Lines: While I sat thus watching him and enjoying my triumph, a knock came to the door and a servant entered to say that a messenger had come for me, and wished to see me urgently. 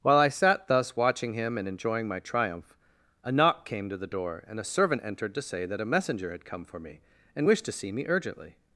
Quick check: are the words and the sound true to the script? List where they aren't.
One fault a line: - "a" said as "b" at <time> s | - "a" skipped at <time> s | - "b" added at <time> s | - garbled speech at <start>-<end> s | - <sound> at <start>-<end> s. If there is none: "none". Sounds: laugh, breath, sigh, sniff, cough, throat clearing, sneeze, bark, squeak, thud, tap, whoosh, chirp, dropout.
none